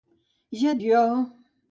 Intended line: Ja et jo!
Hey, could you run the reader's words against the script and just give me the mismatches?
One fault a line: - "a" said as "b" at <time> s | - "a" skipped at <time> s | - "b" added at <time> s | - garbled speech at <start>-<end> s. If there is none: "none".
none